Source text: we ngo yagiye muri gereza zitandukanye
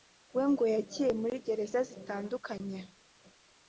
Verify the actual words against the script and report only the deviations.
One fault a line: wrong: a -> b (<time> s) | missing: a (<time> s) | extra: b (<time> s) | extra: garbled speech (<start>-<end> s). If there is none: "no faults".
no faults